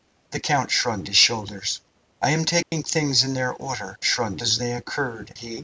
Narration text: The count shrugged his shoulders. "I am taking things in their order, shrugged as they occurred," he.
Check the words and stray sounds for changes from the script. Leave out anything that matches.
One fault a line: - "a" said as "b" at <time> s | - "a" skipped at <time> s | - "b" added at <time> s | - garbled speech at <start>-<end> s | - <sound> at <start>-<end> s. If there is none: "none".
- dropout at 2.6-2.7 s